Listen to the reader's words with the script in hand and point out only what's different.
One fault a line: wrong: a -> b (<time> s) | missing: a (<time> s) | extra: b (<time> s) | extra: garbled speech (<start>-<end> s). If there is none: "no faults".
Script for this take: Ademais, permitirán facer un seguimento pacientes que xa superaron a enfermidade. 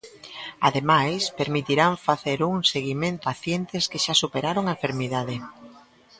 no faults